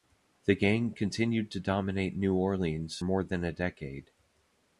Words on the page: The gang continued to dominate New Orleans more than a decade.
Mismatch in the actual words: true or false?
false